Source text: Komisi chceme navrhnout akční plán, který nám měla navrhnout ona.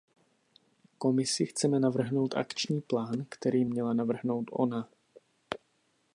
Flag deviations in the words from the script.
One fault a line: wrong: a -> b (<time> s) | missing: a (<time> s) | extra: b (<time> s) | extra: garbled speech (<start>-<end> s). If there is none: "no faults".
missing: nám (3.6 s)